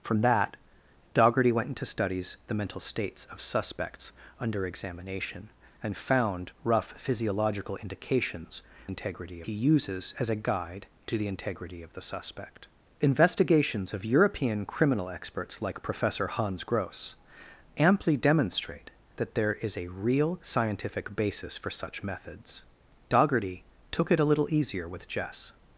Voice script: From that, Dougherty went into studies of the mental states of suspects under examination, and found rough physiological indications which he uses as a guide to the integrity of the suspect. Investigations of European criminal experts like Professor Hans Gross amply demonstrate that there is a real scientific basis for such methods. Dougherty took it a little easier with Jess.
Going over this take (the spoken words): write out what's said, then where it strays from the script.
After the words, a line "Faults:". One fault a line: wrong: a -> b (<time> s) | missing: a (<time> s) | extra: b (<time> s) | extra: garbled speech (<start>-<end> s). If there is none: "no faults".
From that, Dougherty went into studies the mental states of suspects under examination, and found rough physiological indications integrity he uses as a guide to the integrity of the suspect. Investigations of European criminal experts like Professor Hans Gross amply demonstrate that there is a real scientific basis for such methods. Dougherty took it a little easier with Jess.
Faults:
missing: of (2.4 s)
wrong: which -> integrity (8.9 s)